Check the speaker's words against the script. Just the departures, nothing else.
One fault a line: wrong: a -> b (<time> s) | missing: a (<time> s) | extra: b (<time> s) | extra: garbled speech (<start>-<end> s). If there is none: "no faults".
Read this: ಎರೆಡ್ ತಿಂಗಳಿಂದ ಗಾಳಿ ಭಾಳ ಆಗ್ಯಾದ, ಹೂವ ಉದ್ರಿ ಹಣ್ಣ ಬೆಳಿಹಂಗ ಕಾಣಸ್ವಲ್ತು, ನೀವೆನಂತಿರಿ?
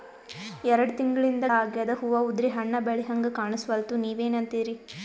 missing: ಗಾಳಿ ಭಾಳ (1.4 s)